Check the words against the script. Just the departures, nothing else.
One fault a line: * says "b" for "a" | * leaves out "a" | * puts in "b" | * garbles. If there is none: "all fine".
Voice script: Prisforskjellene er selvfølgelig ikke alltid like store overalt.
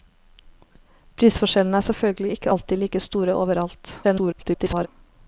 * garbles